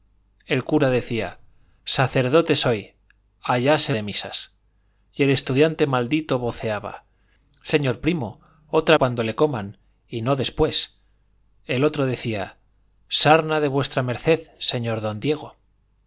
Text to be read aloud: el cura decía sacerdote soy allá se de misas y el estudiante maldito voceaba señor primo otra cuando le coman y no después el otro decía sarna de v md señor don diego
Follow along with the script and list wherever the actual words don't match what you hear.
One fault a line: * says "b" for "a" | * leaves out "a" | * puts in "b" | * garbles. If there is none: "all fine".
all fine